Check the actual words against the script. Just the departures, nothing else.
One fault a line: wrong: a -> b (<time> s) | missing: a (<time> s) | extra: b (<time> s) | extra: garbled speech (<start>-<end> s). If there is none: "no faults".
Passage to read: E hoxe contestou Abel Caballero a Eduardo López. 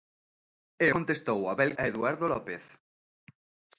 missing: hoxe (0.9 s)
missing: Caballero (1.7 s)